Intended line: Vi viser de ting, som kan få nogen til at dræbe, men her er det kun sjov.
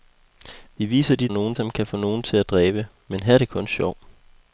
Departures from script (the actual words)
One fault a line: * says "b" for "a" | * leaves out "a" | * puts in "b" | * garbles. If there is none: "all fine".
* says "nogen" for "ting"